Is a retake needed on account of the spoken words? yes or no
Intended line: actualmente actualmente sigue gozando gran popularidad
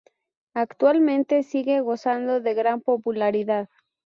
yes